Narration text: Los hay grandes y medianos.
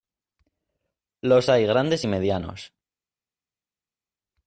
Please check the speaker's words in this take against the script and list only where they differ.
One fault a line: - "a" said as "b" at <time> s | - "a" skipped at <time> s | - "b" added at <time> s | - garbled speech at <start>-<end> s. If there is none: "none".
none